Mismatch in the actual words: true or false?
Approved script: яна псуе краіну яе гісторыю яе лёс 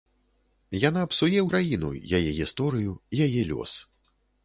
false